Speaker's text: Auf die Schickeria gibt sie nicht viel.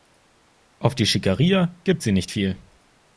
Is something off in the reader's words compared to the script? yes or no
no